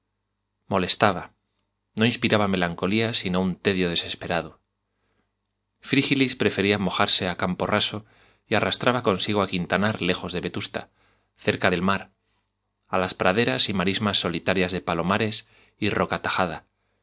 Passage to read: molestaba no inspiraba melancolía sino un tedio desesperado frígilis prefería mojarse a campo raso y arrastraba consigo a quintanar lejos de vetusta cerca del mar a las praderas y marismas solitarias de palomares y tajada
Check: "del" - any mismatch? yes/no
no